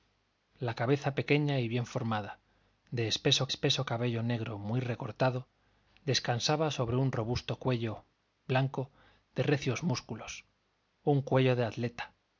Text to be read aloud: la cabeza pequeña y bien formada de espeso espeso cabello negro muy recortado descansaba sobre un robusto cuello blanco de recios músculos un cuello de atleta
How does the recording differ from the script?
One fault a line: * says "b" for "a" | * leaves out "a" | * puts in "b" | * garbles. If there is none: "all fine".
all fine